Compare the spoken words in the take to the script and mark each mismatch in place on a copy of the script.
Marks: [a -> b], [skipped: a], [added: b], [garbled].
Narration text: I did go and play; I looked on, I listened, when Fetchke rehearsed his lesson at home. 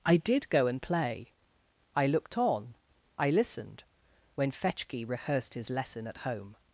I did go and play; I looked on, I listened, when Fetchke rehearsed his lesson at home.